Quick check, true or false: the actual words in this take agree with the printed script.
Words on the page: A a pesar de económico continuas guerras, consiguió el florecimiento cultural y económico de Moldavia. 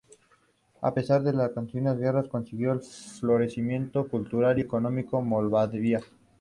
false